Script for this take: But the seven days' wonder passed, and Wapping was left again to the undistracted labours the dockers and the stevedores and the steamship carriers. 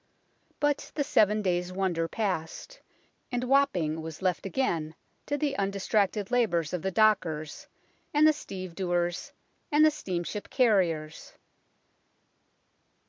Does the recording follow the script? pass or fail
fail